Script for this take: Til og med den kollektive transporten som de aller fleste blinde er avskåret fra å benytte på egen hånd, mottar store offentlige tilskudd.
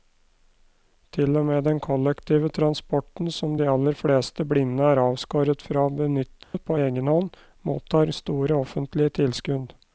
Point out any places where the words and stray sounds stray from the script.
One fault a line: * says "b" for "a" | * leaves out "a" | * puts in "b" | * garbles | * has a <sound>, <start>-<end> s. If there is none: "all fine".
* has a dropout, 6.4-6.5 s